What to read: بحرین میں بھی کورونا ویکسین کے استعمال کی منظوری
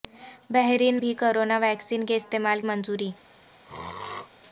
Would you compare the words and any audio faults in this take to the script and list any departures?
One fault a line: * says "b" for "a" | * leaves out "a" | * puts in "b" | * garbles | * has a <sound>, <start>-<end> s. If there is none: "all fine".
* leaves out "میں"
* leaves out "کی"
* has a throat clearing, 3.6-4.3 s